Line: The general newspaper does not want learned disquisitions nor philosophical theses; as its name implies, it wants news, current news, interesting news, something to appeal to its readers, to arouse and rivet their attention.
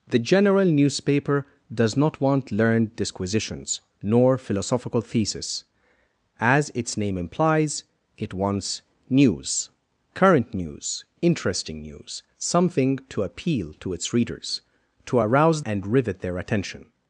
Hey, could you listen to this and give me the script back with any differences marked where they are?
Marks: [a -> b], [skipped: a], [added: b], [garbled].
The general newspaper does not want learned disquisitions nor philosophical theses; as its name implies, it wants news, current news, interesting news, something to appeal to its readers, to arouse and rivet their attention.